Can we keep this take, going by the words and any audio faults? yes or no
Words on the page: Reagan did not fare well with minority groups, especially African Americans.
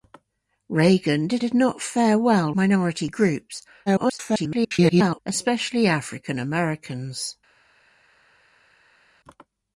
no